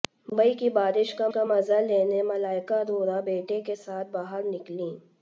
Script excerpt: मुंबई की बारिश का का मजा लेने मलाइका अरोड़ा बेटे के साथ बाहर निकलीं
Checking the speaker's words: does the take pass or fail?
pass